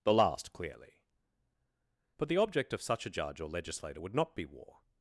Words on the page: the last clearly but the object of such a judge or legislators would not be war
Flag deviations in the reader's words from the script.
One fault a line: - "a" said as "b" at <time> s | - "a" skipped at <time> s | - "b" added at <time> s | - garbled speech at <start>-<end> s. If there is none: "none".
- "legislators" said as "legislator" at 3.5 s